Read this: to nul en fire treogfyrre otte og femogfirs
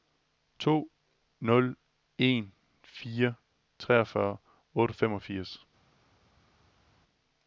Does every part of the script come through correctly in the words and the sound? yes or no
yes